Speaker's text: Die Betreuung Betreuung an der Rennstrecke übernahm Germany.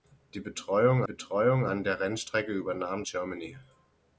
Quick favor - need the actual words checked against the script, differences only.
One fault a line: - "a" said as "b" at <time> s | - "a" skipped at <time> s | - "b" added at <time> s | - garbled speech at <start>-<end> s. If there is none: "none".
none